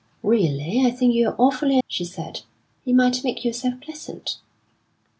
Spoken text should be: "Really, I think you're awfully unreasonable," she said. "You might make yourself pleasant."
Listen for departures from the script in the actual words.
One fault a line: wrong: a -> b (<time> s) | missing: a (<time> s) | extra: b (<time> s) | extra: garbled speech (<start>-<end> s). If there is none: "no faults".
missing: unreasonable (1.8 s)